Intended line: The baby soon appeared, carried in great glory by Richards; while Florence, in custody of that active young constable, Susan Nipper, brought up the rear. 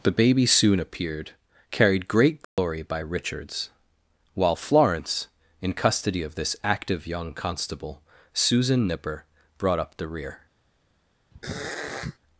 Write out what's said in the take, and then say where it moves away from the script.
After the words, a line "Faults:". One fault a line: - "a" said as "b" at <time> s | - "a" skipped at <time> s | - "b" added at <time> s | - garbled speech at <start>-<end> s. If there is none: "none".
The baby soon appeared, carried great glory by Richards; while Florence, in custody of this active young constable, Susan Nipper, brought up the rear.
Faults:
- "in" skipped at 2.1 s
- "that" said as "this" at 6.4 s